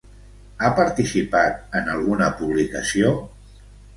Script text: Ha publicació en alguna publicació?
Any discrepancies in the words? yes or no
yes